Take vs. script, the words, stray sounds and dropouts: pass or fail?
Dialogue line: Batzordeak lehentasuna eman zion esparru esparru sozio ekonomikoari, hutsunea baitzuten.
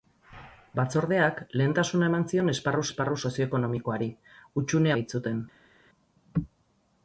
pass